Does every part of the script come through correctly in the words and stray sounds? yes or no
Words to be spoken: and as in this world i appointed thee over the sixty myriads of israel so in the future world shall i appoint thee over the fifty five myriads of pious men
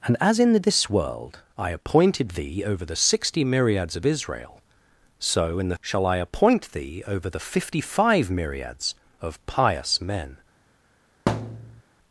no